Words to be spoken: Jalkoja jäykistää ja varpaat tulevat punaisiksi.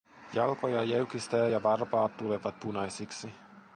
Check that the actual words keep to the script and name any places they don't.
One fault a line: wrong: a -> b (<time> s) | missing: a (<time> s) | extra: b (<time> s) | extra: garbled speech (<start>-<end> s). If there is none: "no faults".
no faults